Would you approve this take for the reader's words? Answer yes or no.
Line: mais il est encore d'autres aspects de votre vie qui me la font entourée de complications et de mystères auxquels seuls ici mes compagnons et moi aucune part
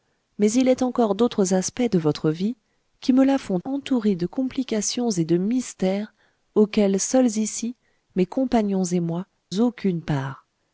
yes